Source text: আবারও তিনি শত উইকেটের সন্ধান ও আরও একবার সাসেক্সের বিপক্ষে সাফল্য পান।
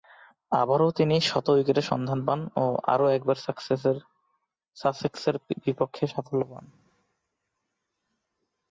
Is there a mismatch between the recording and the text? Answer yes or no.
yes